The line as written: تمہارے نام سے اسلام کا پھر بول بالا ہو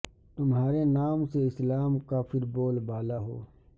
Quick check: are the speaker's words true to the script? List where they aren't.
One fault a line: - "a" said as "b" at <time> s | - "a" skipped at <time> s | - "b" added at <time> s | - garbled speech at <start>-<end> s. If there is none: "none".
none